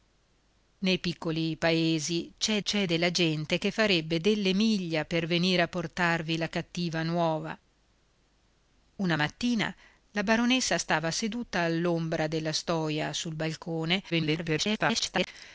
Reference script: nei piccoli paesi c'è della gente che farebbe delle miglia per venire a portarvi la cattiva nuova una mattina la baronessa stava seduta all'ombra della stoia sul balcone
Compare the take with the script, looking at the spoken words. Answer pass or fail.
fail